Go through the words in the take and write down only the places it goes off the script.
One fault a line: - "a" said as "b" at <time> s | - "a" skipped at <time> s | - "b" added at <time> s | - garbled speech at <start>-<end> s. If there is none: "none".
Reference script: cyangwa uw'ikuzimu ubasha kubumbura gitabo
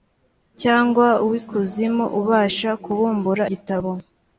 none